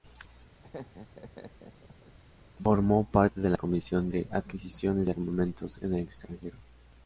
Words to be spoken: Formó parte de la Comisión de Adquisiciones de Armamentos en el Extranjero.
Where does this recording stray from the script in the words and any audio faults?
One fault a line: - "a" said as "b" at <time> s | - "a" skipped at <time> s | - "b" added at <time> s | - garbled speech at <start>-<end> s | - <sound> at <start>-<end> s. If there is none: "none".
- laugh at 0.6-2.2 s